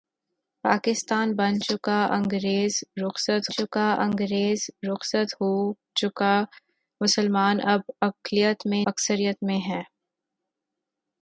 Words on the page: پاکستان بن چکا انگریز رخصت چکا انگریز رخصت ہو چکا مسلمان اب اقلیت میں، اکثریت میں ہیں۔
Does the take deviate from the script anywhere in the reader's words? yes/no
no